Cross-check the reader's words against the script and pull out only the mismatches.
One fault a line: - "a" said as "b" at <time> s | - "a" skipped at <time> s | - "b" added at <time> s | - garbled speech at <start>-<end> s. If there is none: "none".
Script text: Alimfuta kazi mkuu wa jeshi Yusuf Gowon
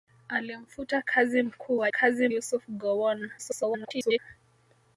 - "jeshi" said as "kazi" at 1.9 s
- garbled speech at 3.4-4.2 s